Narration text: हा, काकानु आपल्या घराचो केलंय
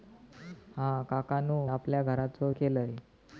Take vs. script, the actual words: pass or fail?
pass